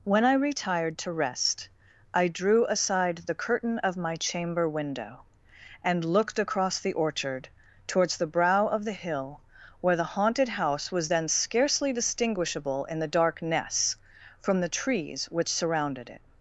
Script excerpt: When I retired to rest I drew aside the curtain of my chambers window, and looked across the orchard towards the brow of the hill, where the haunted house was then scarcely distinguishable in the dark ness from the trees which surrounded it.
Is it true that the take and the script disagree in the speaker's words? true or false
true